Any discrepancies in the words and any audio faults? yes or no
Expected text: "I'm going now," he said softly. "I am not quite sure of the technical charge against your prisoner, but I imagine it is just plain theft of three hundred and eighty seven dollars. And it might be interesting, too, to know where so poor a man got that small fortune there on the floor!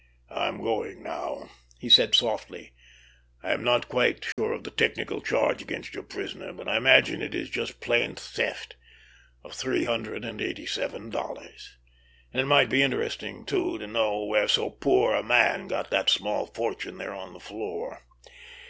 yes